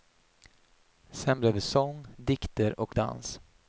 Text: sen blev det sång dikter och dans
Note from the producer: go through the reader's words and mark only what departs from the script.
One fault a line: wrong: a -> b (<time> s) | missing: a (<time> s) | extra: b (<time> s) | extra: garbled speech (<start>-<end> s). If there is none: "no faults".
no faults